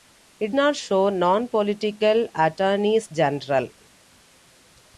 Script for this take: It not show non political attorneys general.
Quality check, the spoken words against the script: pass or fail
pass